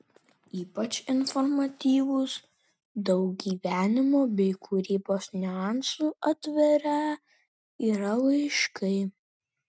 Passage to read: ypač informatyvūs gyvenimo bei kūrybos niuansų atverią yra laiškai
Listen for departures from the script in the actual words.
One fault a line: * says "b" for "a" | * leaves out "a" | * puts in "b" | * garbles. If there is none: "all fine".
* puts in "daug"